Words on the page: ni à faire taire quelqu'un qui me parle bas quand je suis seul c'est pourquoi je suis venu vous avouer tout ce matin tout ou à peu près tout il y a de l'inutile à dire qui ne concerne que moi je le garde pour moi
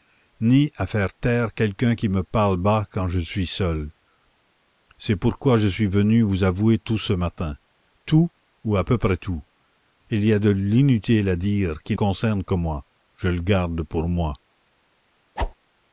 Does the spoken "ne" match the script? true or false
false